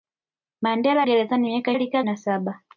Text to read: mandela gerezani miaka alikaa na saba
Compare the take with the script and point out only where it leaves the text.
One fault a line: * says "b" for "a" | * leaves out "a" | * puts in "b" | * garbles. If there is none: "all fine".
all fine